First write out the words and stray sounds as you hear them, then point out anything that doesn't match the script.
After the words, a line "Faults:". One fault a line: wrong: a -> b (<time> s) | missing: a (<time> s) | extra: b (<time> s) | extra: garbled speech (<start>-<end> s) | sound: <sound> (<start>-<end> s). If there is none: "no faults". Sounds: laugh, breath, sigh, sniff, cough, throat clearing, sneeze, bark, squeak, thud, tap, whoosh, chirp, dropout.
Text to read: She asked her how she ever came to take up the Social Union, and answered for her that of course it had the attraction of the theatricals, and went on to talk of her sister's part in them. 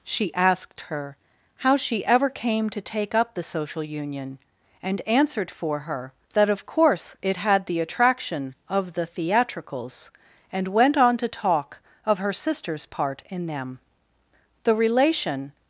She asked her how she ever came to take up the Social Union, and answered for her that of course it had the attraction of the theatricals, and went on to talk of her sister's part in them. The relation
Faults:
extra: The relation (14.6 s)